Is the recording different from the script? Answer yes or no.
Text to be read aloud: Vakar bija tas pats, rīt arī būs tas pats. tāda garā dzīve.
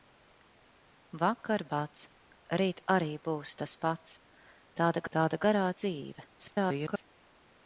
yes